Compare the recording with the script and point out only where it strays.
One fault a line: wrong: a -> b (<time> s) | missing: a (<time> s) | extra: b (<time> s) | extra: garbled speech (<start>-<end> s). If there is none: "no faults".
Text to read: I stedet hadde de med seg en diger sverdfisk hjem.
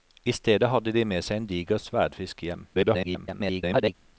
extra: garbled speech (2.7-4.0 s)